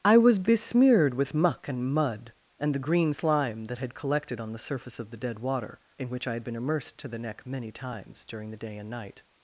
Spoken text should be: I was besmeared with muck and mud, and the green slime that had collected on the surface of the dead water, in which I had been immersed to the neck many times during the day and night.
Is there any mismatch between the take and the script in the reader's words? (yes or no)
no